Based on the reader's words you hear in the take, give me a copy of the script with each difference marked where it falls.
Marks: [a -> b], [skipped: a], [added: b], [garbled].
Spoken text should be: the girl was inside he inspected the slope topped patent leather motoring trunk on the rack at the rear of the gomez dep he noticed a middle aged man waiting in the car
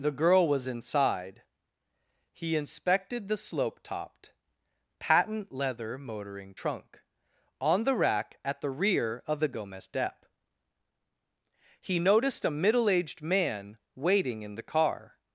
the girl was inside he inspected the slope topped patent leather motoring trunk on the rack at the rear of the gomez dep he noticed a middle aged man waiting in the car